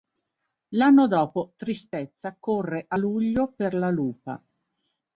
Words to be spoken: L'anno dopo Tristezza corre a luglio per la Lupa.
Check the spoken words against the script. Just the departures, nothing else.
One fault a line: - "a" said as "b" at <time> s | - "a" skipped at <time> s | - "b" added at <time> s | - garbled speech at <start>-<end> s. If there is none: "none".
none